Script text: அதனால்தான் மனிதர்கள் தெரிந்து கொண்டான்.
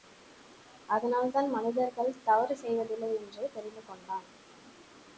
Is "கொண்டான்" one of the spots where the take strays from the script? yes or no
no